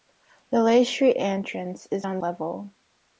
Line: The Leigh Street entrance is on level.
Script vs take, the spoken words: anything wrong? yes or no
no